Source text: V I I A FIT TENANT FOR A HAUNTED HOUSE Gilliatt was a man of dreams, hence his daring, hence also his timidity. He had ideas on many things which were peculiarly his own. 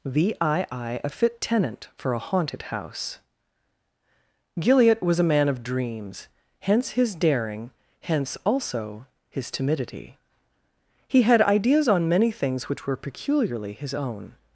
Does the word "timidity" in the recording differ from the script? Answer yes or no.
no